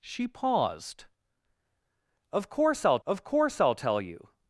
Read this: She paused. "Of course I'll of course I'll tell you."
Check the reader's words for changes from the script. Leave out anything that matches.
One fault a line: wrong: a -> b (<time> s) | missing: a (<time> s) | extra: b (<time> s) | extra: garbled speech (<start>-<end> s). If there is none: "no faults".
no faults